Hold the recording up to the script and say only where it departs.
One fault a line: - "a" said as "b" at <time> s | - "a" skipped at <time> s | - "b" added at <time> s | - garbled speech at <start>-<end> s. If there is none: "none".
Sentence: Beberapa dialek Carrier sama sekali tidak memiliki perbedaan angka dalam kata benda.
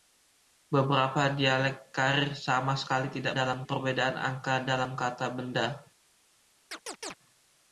- "memiliki" said as "dalam" at 3.3 s